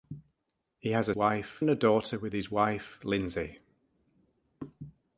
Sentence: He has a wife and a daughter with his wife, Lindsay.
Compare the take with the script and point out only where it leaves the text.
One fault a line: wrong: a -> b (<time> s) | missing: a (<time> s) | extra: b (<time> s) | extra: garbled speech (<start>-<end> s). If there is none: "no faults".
no faults